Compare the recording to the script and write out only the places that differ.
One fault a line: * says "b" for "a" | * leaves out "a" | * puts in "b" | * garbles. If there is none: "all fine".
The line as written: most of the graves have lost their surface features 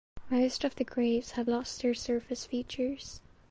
all fine